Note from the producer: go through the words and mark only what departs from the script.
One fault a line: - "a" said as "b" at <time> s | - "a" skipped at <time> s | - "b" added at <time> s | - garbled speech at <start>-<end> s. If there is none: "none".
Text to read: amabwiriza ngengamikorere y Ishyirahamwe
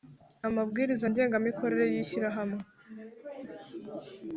none